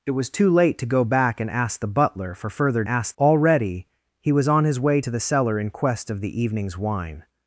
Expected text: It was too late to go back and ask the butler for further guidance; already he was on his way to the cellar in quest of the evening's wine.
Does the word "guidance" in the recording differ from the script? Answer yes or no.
yes